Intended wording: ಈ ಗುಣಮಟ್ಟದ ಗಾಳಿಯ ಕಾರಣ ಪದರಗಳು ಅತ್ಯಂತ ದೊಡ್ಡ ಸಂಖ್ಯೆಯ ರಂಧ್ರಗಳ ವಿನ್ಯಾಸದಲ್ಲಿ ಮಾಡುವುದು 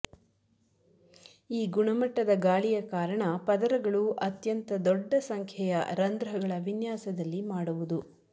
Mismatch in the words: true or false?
false